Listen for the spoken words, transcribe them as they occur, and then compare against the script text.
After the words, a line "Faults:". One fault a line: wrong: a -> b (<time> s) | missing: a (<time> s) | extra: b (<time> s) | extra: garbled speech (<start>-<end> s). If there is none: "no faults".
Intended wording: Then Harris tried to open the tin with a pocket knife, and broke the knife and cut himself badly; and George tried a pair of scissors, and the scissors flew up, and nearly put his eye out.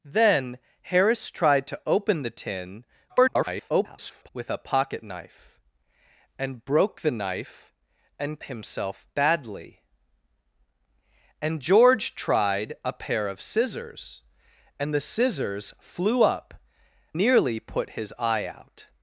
Then Harris tried to open the tin [garbled] with a pocket knife, and broke the knife and himself badly; and George tried a pair of scissors, and the scissors flew up, nearly put his eye out.
Faults:
extra: garbled speech (3.1-4.3 s)
missing: cut (8.4 s)
missing: and (16.5 s)